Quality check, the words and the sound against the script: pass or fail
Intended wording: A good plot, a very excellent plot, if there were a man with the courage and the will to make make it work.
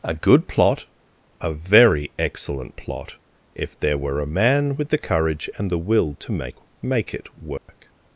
fail